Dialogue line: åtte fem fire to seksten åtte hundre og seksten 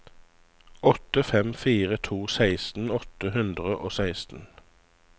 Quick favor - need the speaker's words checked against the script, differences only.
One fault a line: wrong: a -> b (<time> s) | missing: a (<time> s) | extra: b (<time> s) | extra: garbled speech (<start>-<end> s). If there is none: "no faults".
no faults